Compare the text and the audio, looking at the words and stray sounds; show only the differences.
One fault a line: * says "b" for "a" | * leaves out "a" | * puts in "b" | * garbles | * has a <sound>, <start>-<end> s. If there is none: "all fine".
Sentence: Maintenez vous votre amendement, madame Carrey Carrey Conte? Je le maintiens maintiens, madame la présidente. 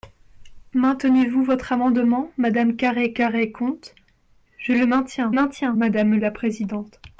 all fine